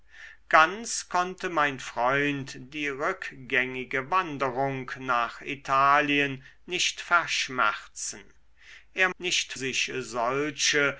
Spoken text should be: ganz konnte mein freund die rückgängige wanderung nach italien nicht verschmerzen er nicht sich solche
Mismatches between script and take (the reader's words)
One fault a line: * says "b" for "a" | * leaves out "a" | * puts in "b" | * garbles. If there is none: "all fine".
all fine